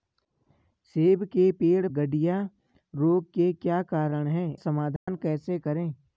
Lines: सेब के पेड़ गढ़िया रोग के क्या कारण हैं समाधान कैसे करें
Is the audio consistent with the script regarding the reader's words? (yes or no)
yes